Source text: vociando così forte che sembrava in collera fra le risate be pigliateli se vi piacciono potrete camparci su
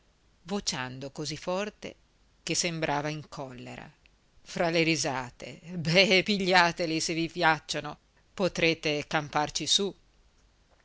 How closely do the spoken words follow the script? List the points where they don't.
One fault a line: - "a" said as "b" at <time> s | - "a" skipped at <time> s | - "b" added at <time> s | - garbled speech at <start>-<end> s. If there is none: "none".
none